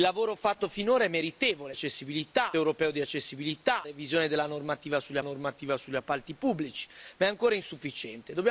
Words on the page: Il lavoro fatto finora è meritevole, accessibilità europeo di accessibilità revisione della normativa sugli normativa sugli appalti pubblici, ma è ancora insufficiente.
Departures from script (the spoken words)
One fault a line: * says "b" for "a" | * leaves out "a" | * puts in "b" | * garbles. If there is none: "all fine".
all fine